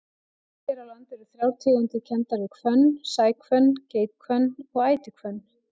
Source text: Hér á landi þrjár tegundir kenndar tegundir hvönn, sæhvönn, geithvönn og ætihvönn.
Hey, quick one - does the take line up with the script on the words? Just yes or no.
no